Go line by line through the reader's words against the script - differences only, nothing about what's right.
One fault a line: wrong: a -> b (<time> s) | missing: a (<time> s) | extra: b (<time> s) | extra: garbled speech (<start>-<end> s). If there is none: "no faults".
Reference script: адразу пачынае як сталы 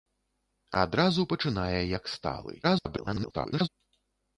extra: garbled speech (2.6-3.7 s)